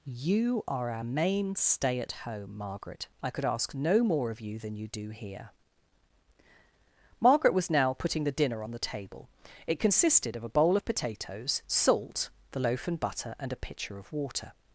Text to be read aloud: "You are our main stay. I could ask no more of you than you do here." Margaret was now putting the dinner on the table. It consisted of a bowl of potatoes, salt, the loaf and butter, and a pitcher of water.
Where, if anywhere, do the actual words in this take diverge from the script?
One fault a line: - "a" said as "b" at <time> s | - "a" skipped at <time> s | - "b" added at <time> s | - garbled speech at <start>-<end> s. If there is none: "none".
- "at home Margaret" added at 2.0 s